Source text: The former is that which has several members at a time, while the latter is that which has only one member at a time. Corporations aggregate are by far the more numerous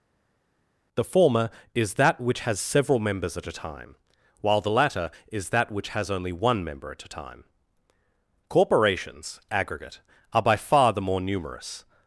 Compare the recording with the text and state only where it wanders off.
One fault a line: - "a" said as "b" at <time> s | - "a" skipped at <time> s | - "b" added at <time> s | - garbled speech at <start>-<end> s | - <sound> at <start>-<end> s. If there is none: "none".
none